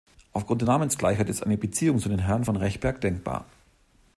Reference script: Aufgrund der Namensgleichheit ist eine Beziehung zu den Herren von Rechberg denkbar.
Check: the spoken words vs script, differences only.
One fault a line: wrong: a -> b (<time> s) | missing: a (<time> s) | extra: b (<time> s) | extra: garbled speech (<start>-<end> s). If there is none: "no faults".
no faults